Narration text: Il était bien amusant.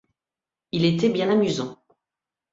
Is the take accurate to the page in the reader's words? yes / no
yes